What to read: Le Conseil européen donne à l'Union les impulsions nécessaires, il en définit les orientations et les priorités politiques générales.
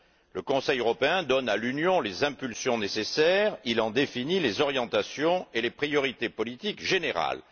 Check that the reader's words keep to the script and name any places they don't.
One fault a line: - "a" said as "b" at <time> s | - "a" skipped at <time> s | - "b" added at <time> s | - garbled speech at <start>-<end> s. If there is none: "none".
none